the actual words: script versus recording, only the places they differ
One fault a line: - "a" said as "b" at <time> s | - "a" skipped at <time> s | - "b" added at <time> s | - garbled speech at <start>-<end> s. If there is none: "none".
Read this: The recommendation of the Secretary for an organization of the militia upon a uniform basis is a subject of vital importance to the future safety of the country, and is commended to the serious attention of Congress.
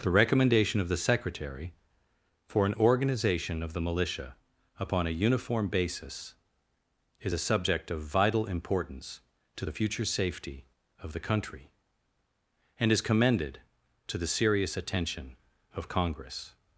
none